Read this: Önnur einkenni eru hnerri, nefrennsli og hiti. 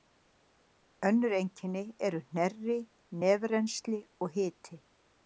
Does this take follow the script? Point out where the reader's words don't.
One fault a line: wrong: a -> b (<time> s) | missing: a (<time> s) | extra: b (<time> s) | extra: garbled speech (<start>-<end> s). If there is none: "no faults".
no faults